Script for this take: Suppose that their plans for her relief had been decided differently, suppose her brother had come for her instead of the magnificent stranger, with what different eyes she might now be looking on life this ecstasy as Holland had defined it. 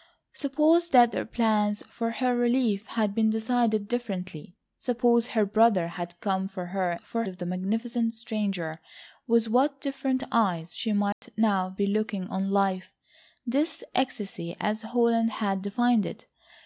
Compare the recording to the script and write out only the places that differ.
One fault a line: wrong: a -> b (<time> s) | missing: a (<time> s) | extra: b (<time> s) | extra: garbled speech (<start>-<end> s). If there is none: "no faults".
wrong: instead -> for (7.0 s)